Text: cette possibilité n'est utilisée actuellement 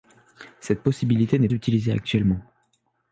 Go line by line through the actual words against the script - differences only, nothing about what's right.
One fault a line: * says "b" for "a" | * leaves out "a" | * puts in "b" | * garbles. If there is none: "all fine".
all fine